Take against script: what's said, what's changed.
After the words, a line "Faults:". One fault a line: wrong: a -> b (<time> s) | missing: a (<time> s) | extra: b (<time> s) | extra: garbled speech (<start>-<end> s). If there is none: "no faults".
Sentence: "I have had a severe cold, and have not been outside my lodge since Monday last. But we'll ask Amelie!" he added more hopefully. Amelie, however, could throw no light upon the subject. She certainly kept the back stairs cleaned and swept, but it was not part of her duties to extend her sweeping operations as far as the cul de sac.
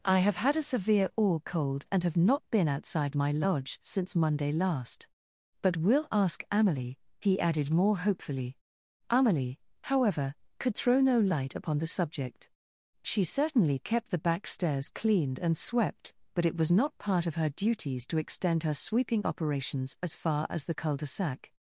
"I have had a severe or cold, and have not been outside my lodge since Monday last. But we'll ask Amelie!" he added more hopefully. Amelie, however, could throw no light upon the subject. She certainly kept the back stairs cleaned and swept, but it was not part of her duties to extend her sweeping operations as far as the cul de sac.
Faults:
extra: or (1.1 s)